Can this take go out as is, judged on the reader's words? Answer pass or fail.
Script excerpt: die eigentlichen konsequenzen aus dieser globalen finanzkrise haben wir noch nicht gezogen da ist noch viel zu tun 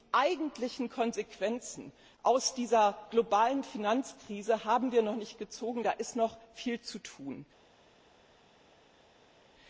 pass